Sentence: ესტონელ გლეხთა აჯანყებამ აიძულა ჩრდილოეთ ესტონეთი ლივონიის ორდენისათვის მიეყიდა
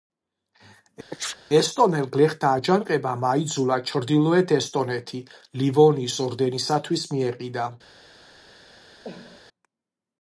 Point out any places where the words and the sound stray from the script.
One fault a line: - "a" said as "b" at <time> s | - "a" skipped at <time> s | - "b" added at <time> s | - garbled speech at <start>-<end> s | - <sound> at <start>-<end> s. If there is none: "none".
- sneeze at 1.1-1.4 s
- cough at 9.0-9.4 s